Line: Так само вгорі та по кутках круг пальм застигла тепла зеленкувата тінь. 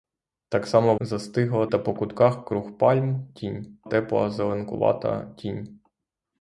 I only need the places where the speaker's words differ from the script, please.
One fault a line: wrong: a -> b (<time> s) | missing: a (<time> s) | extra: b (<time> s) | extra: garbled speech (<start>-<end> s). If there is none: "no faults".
wrong: вгорі -> застигла (1.0 s)
wrong: застигла -> тінь (3.4 s)